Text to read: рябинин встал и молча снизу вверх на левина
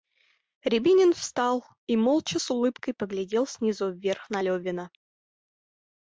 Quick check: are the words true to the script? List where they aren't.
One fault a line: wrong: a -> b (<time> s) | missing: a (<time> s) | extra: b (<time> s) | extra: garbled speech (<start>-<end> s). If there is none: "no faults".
extra: с улыбкой поглядел (2.4 s)